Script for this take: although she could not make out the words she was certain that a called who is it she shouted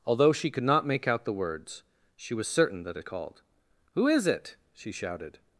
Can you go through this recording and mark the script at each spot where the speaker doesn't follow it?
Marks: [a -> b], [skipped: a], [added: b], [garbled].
although she could not make out the words she was certain that a called who is it she shouted